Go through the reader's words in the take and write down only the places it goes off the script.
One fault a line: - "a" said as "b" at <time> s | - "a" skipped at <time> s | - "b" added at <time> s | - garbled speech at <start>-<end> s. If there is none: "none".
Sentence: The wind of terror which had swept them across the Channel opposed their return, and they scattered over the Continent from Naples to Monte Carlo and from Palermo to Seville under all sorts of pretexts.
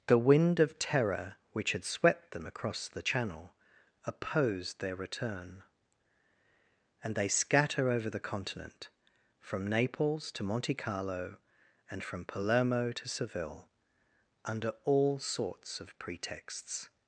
- "scattered" said as "scatter" at 7.3 s